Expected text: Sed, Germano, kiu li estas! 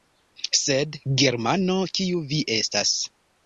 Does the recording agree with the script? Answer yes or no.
no